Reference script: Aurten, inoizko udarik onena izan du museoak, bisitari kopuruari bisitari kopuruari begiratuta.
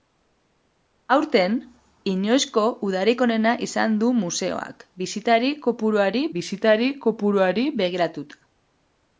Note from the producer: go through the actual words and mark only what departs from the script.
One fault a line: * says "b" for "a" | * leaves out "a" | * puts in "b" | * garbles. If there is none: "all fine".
all fine